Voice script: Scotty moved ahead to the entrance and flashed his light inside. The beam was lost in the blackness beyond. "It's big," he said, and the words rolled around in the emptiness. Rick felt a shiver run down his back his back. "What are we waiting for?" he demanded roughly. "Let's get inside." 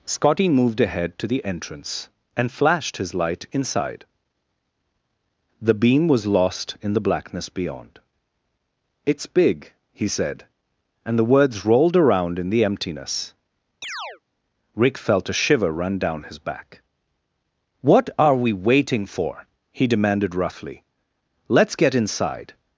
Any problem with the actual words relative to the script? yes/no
yes